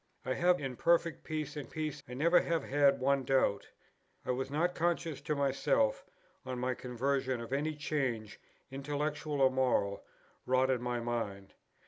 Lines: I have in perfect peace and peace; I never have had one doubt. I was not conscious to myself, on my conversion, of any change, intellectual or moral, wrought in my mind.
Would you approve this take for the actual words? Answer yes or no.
yes